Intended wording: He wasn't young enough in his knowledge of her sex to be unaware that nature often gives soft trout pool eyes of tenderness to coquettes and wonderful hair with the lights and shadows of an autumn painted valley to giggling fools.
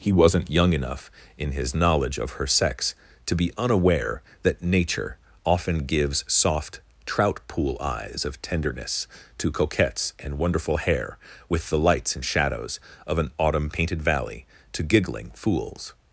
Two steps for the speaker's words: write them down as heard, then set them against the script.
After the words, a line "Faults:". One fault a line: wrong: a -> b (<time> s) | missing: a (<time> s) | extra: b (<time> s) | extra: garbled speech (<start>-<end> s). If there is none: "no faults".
He wasn't young enough in his knowledge of her sex to be unaware that nature often gives soft trout pool eyes of tenderness to coquettes and wonderful hair with the lights and shadows of an autumn painted valley to giggling fools.
Faults:
no faults